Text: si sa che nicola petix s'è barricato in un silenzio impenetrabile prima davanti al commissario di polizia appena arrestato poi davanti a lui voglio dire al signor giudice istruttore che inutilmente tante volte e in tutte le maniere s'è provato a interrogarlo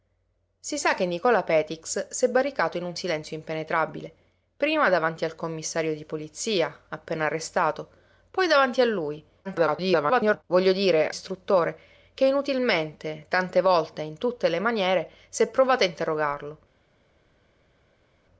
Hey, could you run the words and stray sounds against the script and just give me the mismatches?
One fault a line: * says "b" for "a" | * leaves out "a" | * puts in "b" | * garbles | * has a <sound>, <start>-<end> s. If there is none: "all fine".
* garbles
* leaves out "al signor giudice"